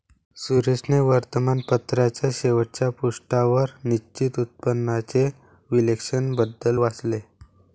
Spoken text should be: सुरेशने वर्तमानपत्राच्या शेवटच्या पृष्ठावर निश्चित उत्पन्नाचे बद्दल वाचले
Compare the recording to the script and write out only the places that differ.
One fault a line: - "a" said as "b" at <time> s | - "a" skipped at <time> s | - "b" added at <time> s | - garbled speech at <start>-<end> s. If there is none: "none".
- "विश्लेषण" added at 5.7 s